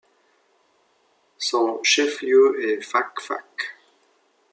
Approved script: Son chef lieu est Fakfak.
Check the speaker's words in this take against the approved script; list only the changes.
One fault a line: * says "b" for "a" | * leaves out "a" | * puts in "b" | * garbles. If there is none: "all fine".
all fine